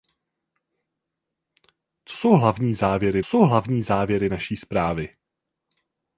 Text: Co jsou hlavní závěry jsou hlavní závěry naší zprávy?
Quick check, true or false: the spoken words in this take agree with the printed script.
true